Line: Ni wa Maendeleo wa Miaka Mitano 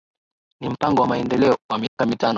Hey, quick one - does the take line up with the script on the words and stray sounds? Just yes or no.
no